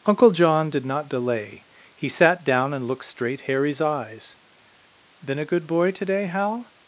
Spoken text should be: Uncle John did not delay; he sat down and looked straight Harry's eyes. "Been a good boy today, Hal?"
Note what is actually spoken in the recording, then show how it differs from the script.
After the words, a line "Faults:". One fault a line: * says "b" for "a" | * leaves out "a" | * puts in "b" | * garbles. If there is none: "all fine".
Uncle John did not delay; he sat down and looked straight Harry's eyes. "Been a good boy today, Hal?"
Faults:
all fine